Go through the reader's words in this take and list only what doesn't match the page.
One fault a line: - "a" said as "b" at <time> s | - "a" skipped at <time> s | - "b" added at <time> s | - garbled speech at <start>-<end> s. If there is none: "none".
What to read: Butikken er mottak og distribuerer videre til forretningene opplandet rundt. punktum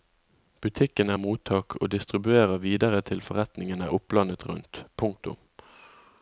none